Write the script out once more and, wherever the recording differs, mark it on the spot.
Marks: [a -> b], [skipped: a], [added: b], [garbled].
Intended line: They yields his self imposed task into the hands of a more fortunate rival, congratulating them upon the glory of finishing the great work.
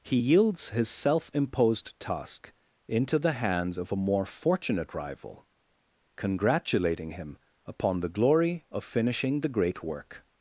[They -> He] yields his self imposed task into the hands of a more fortunate rival, congratulating [them -> him] upon the glory of finishing the great work.